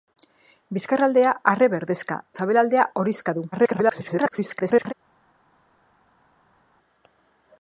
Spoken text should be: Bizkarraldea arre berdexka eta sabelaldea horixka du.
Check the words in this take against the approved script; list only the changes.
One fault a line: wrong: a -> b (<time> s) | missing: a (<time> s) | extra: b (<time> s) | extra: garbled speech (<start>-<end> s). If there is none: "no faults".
missing: eta (2.2 s)
extra: garbled speech (3.5-4.9 s)